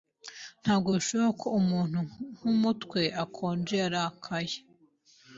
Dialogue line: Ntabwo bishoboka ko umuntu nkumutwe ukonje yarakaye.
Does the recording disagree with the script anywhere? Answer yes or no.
no